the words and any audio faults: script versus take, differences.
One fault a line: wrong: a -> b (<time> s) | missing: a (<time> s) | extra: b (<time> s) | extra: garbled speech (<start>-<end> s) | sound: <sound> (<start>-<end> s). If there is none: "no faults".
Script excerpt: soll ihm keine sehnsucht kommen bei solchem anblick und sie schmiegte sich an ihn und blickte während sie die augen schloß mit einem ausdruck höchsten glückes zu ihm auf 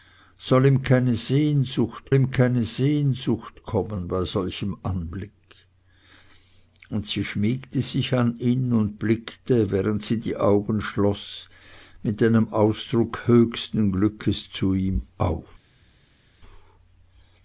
extra: ihm keine sehnsucht (2.1 s)